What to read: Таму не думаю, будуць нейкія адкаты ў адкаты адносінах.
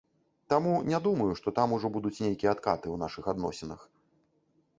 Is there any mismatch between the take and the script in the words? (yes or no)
yes